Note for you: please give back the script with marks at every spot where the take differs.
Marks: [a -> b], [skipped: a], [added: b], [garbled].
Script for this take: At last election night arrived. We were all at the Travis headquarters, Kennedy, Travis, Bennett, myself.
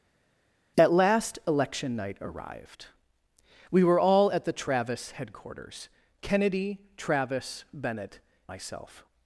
At last election night arrived. We were all at the Travis headquarters, Kennedy, Travis, Bennett, myself.